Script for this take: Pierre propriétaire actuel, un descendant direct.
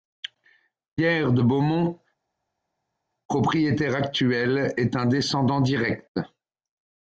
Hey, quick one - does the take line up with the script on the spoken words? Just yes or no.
no